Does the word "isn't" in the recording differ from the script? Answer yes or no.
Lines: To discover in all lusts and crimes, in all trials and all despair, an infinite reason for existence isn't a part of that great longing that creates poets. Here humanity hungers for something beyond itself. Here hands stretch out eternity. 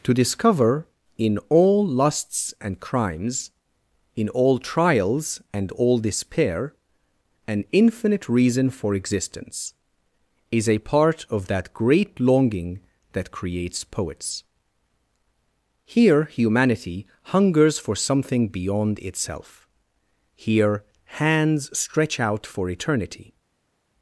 yes